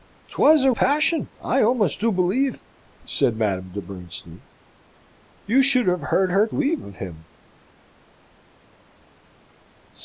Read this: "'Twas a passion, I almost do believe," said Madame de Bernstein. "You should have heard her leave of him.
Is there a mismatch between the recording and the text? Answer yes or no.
no